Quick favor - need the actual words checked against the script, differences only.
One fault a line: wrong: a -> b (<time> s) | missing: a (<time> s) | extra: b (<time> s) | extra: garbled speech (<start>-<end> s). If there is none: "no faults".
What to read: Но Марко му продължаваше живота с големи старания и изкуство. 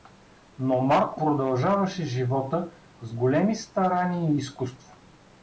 missing: му (1.2 s)